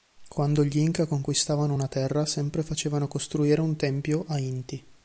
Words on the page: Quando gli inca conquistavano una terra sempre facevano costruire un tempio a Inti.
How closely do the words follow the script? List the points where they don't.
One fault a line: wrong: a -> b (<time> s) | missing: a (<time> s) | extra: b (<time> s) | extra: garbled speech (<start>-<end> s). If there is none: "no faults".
no faults